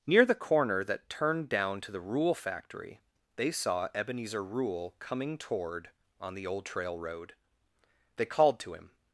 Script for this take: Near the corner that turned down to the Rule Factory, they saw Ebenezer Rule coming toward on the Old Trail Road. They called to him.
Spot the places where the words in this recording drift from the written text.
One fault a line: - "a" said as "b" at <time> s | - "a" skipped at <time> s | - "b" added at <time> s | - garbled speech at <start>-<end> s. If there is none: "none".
none